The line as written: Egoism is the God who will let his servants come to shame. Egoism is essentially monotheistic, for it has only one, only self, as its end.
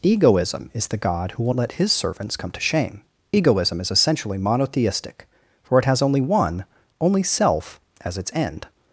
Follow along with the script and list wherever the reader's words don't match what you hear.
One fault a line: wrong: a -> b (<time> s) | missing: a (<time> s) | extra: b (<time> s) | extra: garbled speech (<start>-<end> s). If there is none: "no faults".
no faults